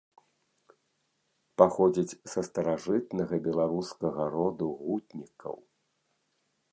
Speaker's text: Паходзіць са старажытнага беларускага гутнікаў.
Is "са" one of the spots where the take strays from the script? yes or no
no